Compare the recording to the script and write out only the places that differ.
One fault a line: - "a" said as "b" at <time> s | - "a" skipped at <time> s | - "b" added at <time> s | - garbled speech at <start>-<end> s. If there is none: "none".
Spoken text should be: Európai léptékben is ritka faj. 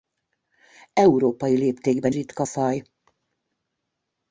- "is" skipped at 2.1 s